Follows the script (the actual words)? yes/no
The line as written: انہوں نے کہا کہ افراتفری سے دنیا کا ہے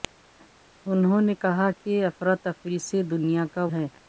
yes